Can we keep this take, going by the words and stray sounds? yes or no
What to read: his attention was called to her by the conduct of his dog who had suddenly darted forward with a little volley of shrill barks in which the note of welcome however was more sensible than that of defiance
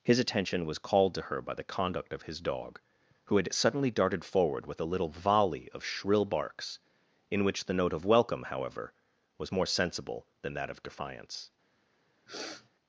no